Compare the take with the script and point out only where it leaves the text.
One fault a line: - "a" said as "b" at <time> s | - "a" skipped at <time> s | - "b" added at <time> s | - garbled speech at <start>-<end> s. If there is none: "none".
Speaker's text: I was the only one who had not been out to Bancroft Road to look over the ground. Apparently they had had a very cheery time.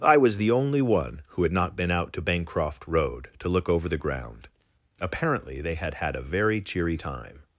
none